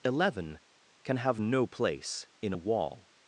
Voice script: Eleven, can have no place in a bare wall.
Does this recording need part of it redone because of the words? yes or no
yes